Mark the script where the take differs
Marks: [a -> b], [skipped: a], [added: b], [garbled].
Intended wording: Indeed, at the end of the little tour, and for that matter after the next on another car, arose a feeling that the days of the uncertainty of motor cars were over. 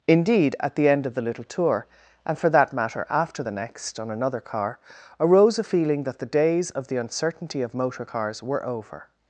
Indeed, at the end of the little tour, and for that matter after the next on another car, arose a feeling that the days of the uncertainty of motor cars were over.